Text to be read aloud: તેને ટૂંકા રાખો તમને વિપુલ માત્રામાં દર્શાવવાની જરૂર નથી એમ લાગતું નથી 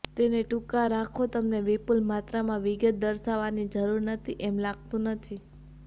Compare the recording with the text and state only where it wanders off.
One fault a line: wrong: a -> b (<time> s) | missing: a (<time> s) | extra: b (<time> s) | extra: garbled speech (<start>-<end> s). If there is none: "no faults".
extra: વિગત (2.7 s)